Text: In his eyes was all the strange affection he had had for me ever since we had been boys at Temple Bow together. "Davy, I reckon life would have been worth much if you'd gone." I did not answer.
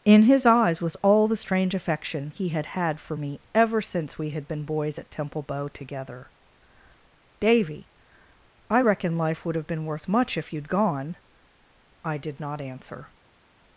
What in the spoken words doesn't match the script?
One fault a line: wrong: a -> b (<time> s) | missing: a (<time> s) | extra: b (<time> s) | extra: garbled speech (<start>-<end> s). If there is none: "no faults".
no faults